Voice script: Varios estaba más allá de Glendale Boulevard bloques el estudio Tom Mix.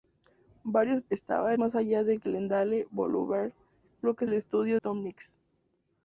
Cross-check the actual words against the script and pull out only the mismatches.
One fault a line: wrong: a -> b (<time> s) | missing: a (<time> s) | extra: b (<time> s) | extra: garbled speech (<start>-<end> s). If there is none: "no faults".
no faults